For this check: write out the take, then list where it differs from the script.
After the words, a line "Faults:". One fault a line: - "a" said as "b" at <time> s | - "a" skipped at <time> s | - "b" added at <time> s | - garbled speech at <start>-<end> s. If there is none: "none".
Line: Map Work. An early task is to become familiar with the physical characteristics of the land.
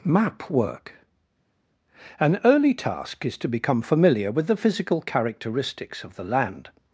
Map Work. An early task is to become familiar with the physical characteristics of the land.
Faults:
none